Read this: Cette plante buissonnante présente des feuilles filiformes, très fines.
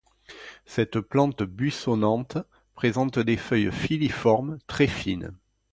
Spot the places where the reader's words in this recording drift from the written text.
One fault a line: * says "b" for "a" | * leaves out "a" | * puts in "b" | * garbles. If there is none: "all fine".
all fine